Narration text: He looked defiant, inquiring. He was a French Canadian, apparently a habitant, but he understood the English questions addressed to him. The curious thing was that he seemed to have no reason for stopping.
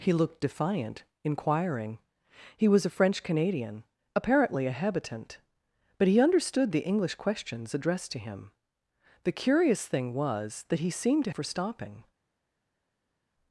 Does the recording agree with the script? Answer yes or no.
no